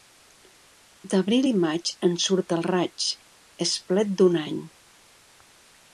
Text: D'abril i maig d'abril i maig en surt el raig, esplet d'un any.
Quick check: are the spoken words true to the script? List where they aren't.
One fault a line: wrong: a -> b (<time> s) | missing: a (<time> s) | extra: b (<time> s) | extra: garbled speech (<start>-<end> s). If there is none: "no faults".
missing: d'abril i maig (1.9 s)